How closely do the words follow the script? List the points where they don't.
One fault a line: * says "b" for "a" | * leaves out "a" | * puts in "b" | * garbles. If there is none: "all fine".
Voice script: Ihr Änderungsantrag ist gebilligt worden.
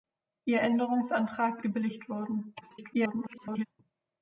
* leaves out "ist"
* garbles